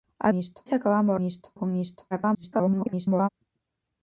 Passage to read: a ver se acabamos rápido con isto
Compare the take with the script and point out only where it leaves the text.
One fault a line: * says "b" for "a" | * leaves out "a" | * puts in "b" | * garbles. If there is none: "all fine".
* says "isto" for "ver"
* says "isto" for "rápido"
* garbles